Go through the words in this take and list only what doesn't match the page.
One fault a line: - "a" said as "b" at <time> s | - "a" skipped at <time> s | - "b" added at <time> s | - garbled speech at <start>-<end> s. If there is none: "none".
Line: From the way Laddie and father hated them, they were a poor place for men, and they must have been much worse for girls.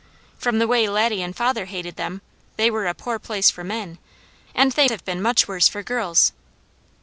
- "must" skipped at 4.9 s